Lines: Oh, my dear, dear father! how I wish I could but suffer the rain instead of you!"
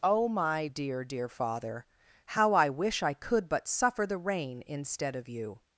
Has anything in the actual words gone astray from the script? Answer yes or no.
no